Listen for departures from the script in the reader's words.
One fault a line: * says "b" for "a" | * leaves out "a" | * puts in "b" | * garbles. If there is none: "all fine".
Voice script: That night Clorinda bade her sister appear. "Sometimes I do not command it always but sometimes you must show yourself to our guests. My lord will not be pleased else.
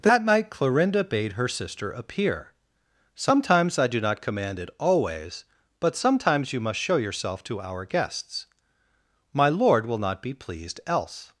all fine